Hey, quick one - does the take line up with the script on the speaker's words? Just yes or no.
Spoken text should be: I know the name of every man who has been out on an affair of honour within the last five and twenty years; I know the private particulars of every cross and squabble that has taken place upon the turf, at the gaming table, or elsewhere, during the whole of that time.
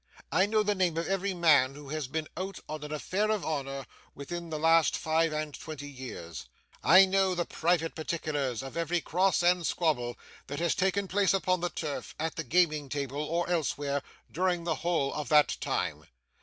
yes